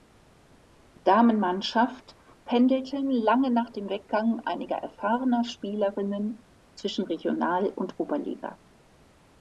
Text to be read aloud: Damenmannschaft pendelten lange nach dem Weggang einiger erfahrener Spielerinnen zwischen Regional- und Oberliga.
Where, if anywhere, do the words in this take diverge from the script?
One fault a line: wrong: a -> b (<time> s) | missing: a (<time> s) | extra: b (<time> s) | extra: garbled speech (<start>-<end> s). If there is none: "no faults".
no faults